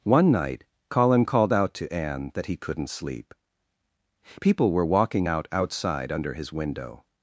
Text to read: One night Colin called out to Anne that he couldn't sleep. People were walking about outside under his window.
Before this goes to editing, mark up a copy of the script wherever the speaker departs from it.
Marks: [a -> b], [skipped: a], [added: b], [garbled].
One night Colin called out to Anne that he couldn't sleep. People were walking [about -> out] outside under his window.